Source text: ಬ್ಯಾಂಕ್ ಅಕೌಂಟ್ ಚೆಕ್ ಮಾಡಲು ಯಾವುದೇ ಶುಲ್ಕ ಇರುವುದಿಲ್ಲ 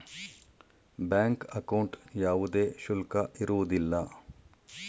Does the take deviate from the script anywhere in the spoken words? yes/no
yes